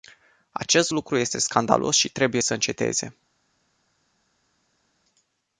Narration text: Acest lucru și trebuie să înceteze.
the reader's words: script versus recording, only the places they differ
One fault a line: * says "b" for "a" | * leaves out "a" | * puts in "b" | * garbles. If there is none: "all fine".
* puts in "este scandalos"